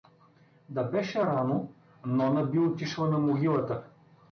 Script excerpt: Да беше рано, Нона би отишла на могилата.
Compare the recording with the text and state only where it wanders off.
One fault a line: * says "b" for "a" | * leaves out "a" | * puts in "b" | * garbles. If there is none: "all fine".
all fine